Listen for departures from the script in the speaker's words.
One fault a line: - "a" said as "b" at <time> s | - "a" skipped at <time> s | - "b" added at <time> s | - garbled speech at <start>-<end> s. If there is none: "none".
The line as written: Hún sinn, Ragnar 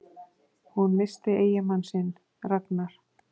- "missti eiginmann" added at 1.0 s